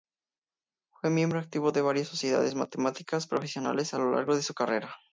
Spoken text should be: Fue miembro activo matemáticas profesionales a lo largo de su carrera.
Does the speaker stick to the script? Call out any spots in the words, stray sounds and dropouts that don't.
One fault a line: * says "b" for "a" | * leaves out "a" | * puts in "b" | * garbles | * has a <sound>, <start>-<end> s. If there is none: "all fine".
* puts in "de varias sociedades"